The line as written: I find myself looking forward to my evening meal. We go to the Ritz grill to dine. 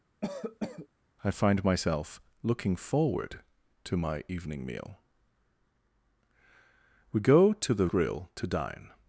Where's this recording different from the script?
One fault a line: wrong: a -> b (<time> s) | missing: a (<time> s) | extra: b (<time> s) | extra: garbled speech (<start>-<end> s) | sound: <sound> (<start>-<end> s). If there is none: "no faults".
sound: cough (0.2-0.9 s)
missing: Ritz (7.9 s)